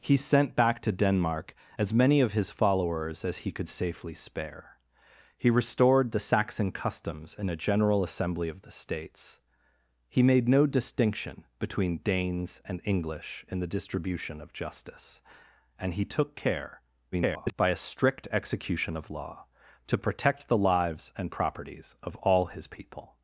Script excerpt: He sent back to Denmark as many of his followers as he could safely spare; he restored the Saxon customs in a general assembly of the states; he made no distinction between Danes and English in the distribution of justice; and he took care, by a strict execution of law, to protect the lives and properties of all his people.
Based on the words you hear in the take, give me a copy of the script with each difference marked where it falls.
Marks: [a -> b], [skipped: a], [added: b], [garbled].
He sent back to Denmark as many of his followers as he could safely spare; he restored the Saxon customs in a general assembly of the states; he made no distinction between Danes and English in the distribution of justice; and he took care, [garbled] by a strict execution of law, to protect the lives and properties of all his people.